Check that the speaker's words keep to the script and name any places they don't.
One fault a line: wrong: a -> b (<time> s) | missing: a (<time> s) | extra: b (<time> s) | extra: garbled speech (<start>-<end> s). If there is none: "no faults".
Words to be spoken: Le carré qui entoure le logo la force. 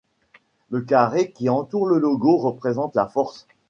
extra: représente (2.4 s)